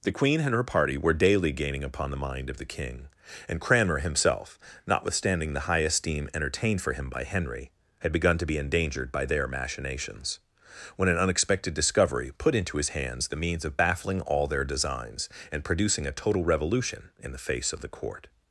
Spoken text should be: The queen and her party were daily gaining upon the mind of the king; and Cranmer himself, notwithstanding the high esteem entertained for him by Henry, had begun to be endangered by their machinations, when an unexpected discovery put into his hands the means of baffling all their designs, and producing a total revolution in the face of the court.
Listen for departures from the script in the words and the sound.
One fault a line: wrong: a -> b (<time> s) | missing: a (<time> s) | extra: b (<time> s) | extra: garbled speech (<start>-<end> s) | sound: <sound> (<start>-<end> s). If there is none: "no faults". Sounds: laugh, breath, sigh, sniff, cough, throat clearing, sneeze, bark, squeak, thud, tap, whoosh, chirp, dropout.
no faults